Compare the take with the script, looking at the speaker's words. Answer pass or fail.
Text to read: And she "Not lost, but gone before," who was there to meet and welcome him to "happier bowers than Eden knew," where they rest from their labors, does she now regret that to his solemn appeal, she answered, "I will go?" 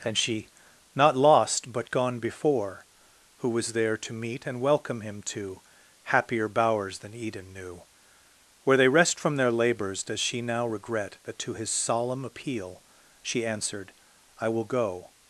pass